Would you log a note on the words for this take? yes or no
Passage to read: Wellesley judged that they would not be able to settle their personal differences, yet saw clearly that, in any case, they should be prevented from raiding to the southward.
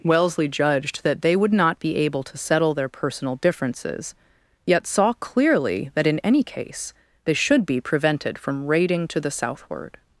no